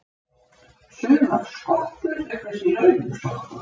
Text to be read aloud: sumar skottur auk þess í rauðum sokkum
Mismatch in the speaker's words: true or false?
false